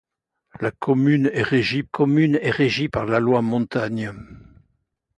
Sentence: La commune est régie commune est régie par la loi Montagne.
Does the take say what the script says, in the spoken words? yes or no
yes